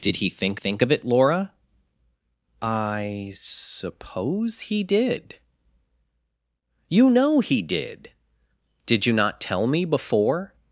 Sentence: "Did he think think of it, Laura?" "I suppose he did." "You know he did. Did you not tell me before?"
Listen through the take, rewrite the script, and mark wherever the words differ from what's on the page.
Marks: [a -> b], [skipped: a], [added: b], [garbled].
"Did he think think of it, Laura?" "I suppose he did." "You know he did. Did you not tell me before?"